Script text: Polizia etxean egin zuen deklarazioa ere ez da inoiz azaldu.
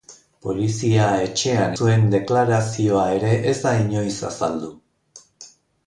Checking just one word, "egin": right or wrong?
wrong